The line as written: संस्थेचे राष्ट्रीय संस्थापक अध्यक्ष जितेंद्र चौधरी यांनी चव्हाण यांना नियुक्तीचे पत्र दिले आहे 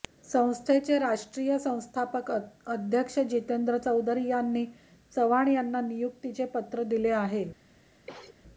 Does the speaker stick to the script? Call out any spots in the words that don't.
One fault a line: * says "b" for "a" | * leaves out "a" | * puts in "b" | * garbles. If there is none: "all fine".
all fine